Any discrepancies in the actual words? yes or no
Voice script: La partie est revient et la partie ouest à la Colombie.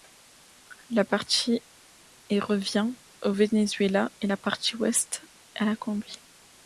yes